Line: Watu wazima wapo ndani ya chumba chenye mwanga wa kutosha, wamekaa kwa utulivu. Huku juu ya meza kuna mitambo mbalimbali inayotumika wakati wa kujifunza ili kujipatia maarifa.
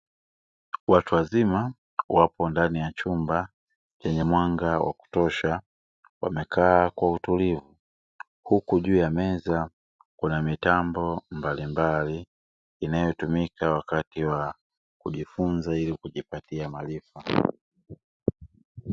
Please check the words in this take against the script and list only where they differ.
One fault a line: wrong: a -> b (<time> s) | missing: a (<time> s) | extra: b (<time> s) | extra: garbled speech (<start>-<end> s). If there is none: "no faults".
no faults